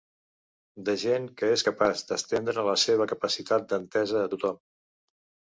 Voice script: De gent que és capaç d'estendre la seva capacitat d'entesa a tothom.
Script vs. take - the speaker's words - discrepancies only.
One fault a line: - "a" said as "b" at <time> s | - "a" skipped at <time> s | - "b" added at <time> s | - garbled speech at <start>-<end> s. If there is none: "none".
none